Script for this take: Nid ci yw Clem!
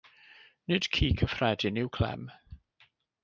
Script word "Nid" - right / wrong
right